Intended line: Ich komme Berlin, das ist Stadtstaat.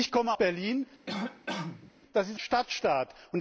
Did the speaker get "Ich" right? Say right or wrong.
right